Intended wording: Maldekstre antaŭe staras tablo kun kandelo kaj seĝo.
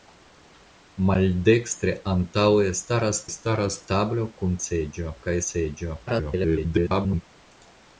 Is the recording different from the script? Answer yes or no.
yes